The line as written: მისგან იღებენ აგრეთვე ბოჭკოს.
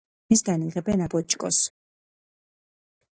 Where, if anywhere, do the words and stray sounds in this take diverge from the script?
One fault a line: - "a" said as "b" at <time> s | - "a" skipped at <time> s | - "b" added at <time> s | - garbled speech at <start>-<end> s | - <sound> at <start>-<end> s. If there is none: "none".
- "აგრეთვე" skipped at 1.1 s